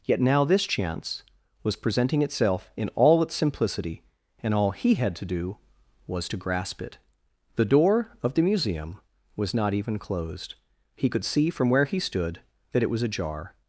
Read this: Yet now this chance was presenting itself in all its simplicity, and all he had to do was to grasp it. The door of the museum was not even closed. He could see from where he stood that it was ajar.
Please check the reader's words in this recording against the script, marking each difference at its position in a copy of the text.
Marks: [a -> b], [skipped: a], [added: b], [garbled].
Yet now this chance was presenting itself in all its simplicity, and all he had to do was to grasp it. The door of the museum was not even closed. He could see from where he stood that it was ajar.